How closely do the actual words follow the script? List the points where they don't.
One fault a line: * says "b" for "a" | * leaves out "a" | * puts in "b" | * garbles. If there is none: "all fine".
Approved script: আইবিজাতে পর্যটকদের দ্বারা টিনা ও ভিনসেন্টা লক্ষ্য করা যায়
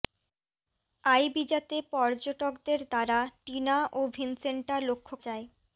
* leaves out "করা"